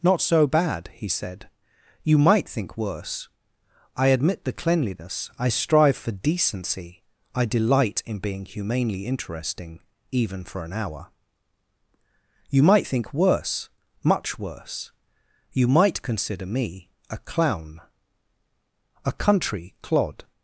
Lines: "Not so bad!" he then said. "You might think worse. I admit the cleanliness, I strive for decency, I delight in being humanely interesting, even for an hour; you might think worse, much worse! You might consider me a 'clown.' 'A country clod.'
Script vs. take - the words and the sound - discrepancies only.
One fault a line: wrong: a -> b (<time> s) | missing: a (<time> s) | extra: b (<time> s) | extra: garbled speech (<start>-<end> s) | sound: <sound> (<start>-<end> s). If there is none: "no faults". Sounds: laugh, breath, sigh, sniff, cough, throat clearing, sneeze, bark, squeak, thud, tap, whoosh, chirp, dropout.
missing: then (1.1 s)